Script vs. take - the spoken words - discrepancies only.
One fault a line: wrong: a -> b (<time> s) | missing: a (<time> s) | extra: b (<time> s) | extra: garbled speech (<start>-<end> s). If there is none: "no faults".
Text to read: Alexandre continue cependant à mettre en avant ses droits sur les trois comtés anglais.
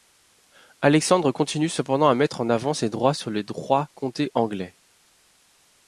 no faults